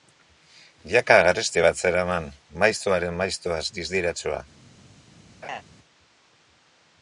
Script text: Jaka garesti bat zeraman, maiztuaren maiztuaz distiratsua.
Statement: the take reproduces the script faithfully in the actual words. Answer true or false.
true